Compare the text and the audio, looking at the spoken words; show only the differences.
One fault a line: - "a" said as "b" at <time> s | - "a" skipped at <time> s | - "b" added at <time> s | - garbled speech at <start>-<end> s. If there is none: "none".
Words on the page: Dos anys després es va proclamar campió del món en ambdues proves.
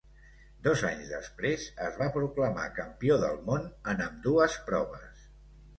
none